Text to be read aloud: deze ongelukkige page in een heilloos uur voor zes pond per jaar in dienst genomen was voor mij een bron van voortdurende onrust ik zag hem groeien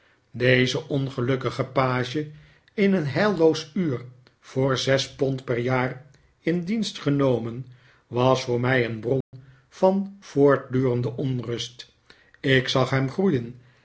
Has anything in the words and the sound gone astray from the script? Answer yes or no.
yes